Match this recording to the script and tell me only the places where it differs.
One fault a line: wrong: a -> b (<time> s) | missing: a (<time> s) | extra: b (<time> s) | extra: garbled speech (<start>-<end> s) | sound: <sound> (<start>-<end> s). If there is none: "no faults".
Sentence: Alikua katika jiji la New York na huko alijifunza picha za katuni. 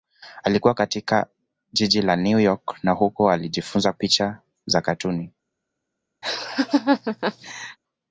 sound: laugh (6.2-7.8 s)